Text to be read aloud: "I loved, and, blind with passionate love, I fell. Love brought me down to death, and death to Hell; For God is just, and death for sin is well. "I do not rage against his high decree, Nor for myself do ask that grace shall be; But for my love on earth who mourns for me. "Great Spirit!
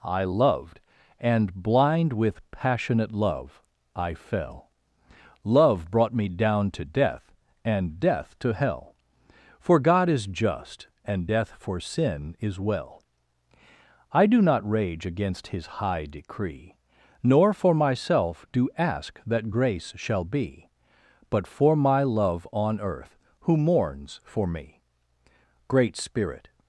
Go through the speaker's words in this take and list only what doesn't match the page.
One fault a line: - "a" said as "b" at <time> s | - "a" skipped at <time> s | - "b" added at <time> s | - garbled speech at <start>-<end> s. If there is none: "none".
none